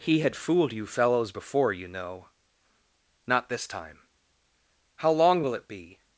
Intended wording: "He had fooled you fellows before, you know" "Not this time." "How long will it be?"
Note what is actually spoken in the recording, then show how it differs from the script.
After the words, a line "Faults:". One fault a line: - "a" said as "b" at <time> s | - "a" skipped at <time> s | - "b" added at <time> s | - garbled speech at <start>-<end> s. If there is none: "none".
"He had fooled you fellows before, you know" "Not this time." "How long will it be?"
Faults:
none